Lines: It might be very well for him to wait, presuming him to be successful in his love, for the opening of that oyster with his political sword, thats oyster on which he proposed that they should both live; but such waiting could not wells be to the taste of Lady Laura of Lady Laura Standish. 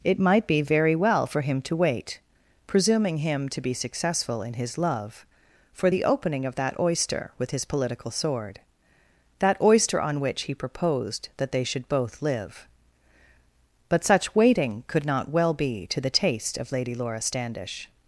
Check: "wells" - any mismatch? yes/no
yes